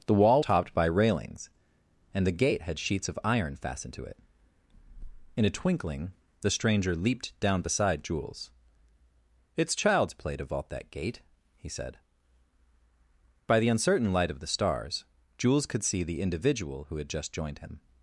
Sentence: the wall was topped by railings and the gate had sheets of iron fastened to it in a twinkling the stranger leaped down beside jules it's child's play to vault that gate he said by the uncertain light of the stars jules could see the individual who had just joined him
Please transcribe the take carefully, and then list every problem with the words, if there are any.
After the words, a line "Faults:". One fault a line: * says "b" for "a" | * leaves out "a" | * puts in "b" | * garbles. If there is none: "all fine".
the wall topped by railings and the gate had sheets of iron fastened to it in a twinkling the stranger leaped down beside jules it's child's play to vault that gate he said by the uncertain light of the stars jules could see the individual who had just joined him
Faults:
* leaves out "was"